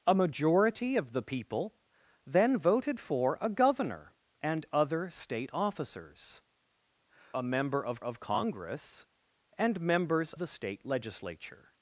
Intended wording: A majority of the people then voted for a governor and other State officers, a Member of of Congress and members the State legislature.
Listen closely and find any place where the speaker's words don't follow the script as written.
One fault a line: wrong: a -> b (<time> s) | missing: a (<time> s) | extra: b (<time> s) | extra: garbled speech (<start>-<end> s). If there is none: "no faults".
no faults